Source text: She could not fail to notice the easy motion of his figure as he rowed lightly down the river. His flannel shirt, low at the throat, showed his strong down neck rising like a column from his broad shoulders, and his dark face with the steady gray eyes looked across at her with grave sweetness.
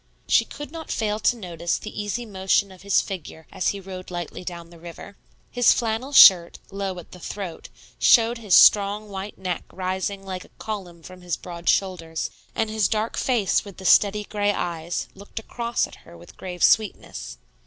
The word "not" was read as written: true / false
true